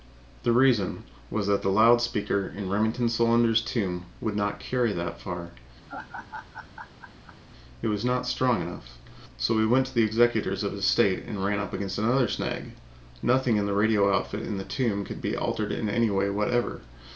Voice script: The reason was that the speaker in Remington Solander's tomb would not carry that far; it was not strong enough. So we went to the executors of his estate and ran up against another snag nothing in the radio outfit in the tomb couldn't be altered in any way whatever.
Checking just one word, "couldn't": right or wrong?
wrong